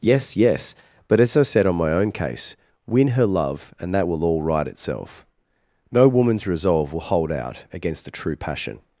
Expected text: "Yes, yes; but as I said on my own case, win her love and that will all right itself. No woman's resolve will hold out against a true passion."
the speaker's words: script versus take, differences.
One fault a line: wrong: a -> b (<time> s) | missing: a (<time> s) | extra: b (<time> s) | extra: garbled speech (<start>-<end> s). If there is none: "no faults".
no faults